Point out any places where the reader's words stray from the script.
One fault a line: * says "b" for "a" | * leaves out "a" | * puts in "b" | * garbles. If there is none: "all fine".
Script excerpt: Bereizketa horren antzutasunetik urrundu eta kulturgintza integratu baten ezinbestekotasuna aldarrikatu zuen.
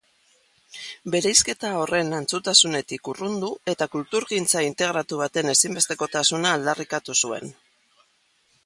all fine